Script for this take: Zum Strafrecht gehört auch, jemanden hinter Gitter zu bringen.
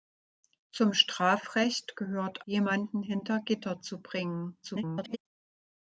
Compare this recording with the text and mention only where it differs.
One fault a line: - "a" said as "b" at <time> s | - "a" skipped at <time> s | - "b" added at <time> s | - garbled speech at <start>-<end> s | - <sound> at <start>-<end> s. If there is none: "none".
- "auch" skipped at 2.4 s
- garbled speech at 4.6-5.2 s